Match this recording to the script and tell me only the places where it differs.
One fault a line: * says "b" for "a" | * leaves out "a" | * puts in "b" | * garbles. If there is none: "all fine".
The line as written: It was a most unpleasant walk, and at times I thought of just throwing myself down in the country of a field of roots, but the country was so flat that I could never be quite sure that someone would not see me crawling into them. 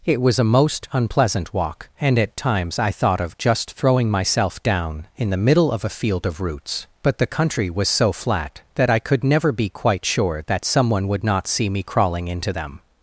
* says "middle" for "country"